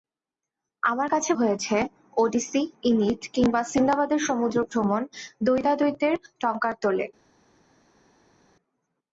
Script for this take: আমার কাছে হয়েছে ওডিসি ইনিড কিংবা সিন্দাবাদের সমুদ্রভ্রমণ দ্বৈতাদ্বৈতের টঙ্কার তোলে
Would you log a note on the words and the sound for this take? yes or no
no